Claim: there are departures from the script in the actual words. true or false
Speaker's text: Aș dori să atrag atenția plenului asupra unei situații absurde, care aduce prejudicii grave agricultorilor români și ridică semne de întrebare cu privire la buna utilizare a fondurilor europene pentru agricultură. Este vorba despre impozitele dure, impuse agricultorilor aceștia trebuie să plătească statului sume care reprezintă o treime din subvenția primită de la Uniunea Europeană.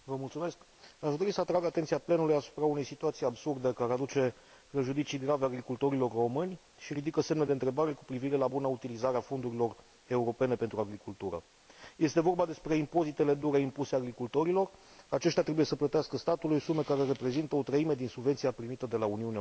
false